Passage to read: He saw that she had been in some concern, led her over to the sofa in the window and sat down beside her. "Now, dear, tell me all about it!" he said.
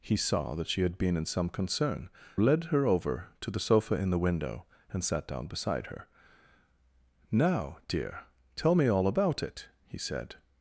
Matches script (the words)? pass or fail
pass